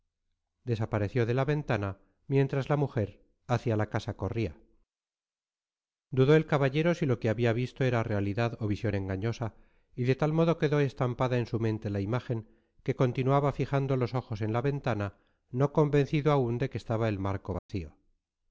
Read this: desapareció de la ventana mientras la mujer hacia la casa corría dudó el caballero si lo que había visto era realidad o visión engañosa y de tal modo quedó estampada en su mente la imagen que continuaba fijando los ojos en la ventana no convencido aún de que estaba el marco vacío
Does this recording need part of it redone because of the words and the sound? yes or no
yes